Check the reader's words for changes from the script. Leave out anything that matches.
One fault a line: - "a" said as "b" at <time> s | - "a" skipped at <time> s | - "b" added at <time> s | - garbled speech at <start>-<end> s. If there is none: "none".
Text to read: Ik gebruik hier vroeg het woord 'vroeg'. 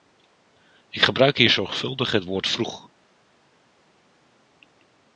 - "vroeg" said as "zorgvuldig" at 1.5 s